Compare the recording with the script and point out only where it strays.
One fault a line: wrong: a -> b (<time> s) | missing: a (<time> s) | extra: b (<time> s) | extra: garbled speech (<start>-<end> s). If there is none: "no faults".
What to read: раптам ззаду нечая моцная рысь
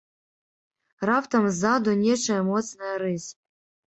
no faults